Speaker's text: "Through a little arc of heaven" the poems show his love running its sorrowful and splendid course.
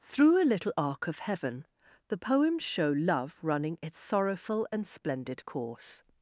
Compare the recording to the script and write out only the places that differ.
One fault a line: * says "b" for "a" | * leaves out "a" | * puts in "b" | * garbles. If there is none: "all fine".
* leaves out "his"